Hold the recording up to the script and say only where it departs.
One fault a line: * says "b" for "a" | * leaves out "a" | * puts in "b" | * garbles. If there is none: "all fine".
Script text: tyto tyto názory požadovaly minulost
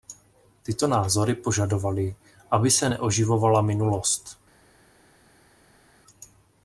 * leaves out "tyto"
* puts in "aby se neoživovala"